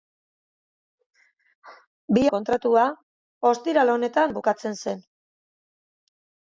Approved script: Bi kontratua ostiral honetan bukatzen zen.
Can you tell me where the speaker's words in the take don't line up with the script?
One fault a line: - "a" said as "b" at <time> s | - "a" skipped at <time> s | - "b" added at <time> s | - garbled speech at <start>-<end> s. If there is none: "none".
none